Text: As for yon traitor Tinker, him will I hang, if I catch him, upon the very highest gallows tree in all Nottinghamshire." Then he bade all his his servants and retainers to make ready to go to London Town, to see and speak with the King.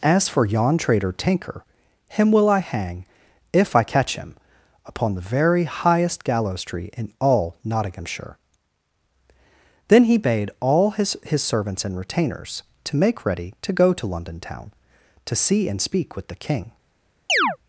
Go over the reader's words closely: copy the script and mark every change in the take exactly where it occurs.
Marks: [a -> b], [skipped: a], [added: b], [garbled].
As for yon traitor Tinker, him will I hang, if I catch him, upon the very highest gallows tree in all Nottinghamshire." Then he bade all his his servants and retainers to make ready to go to London Town, to see and speak with the King.